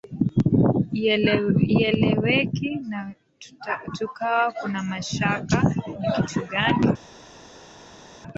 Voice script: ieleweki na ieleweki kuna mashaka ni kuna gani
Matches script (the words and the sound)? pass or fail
fail